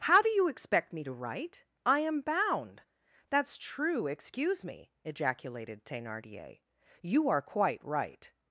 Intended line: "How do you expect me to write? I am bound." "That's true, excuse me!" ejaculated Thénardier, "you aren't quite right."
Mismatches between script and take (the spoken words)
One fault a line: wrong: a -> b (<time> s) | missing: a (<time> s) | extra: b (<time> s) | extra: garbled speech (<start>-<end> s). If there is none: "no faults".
wrong: aren't -> are (7.3 s)